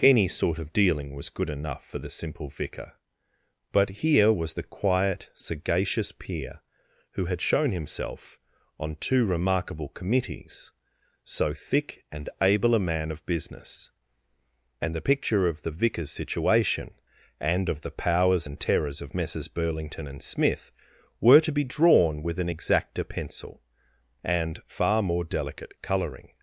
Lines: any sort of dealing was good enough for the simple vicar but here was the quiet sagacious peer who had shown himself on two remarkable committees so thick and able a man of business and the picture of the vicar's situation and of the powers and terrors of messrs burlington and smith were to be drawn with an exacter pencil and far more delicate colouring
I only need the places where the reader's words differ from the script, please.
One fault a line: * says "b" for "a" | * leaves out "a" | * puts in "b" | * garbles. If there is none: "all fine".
all fine